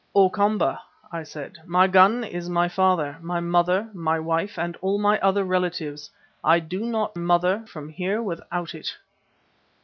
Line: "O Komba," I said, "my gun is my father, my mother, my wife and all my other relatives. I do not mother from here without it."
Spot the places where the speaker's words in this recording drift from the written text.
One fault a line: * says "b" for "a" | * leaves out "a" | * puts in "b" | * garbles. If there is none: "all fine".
all fine